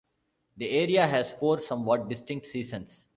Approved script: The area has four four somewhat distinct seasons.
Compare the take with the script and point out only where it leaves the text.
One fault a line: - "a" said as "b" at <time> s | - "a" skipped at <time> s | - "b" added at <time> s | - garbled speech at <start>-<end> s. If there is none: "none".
- "four" skipped at 1.6 s